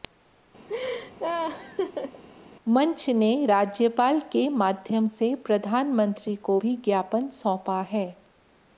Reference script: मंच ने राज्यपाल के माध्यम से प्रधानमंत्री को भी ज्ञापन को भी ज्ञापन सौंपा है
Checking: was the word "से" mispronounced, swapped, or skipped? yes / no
no